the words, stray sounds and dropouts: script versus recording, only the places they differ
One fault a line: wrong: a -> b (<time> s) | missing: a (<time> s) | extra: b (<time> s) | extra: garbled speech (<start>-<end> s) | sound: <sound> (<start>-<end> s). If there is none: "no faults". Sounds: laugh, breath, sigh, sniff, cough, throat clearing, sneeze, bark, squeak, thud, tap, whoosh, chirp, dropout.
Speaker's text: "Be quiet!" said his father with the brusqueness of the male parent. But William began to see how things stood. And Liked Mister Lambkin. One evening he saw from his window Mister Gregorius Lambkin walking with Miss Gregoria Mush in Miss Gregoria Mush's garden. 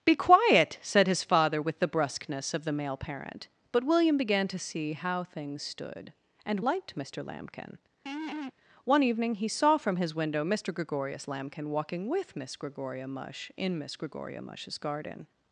sound: laugh (8.1-8.5 s)